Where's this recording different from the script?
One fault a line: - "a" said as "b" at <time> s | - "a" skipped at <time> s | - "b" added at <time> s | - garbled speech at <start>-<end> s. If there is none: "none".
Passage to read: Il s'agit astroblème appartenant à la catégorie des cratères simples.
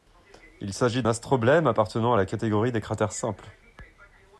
none